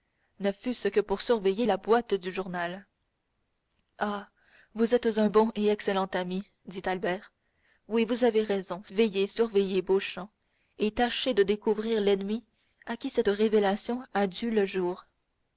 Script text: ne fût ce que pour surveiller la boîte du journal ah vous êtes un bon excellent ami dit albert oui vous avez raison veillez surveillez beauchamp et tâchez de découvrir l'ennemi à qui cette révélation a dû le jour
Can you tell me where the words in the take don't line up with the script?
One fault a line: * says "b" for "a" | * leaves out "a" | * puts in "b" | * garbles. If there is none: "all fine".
* puts in "et"